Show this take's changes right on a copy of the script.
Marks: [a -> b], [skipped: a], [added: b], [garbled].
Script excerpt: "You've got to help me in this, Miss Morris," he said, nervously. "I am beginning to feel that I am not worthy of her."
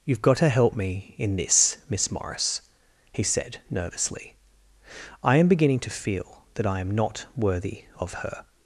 "You've got to help me in this, Miss Morris," he said, nervously. "I am beginning to feel that I am not worthy of her."